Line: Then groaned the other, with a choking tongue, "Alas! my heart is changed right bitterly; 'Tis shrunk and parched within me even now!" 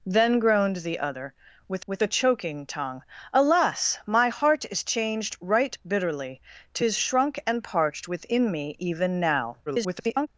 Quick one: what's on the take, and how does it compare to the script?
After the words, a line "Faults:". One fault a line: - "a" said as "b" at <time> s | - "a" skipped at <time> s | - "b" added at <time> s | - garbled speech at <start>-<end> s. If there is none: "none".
Then groaned the other, with with a choking tongue, "Alas! my heart is changed right bitterly; 'Tis shrunk and parched within me even now!" [garbled]
Faults:
- "with" added at 1.9 s
- garbled speech at 9.7-10.3 s